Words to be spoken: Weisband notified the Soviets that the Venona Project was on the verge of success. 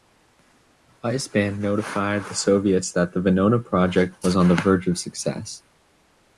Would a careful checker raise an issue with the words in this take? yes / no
no